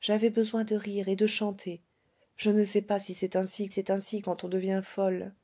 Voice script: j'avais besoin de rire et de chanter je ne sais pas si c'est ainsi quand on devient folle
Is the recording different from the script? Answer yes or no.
yes